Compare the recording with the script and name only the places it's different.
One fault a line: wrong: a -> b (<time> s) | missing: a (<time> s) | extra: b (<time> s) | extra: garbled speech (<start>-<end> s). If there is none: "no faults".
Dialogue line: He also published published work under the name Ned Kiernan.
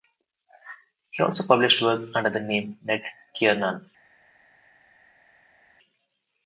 missing: published (1.8 s)